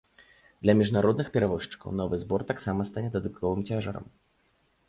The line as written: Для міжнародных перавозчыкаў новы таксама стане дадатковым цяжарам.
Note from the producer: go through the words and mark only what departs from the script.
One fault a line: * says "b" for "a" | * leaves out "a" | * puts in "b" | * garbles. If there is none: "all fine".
* puts in "збор"